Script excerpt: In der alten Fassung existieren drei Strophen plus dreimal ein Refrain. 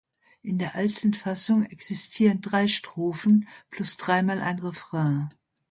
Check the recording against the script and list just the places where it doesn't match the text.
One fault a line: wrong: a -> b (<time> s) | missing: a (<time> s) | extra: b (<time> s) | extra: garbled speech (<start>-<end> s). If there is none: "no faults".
no faults